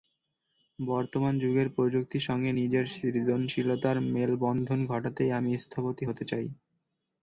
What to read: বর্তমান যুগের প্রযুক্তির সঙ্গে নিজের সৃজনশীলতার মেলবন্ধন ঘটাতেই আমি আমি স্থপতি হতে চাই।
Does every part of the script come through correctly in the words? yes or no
no